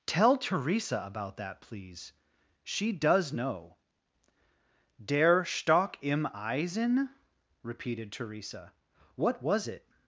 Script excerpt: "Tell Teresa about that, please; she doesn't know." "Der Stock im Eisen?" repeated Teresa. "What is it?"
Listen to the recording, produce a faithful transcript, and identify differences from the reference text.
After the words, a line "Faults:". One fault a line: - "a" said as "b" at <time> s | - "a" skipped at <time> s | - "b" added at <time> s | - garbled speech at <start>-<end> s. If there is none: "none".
"Tell Teresa about that, please; she does know." "Der Stock im Eisen?" repeated Teresa. "What was it?"
Faults:
- "doesn't" said as "does" at 2.9 s
- "is" said as "was" at 9.4 s